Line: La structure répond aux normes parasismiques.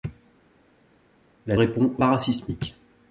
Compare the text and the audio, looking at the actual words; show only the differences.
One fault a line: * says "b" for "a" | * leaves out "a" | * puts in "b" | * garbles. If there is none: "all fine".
* leaves out "structure"
* leaves out "normes"